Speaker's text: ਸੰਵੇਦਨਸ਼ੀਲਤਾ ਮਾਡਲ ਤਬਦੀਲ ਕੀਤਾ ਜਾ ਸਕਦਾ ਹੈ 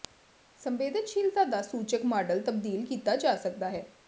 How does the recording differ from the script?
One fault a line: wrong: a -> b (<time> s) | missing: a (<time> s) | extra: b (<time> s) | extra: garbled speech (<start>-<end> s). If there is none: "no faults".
extra: ਦਾ ਸੂਚਕ (1.4 s)